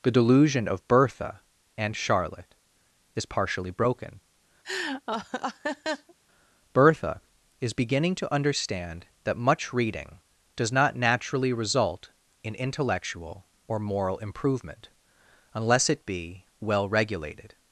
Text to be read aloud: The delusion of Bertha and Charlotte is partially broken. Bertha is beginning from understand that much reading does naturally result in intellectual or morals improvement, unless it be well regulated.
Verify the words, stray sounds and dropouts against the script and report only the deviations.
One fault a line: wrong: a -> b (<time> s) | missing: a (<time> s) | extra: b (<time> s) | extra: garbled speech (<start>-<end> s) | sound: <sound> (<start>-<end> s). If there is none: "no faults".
sound: laugh (4.6-6.1 s)
wrong: from -> to (8.2 s)
extra: not (10.7 s)
wrong: morals -> moral (13.8 s)